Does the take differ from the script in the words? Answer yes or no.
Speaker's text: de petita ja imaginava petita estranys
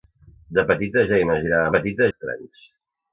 no